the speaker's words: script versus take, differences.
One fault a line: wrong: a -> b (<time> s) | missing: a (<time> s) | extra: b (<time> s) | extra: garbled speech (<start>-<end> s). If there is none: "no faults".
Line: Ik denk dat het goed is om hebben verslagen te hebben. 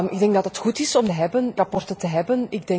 no faults